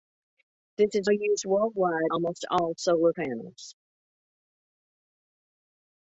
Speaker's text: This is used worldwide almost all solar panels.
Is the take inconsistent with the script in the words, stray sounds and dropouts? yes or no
no